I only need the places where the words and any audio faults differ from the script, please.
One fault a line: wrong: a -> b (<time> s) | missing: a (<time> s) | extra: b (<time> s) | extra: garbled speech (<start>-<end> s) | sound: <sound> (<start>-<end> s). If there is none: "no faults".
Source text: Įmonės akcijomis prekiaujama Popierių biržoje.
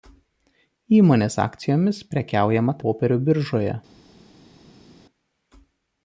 no faults